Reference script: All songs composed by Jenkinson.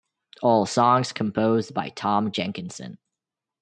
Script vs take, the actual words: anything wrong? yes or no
yes